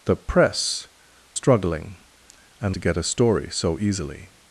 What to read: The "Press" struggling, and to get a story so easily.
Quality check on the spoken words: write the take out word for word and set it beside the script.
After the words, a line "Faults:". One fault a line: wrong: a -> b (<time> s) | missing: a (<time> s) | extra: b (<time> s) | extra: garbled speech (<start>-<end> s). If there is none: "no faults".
The "Press" struggling, and to get a story so easily.
Faults:
no faults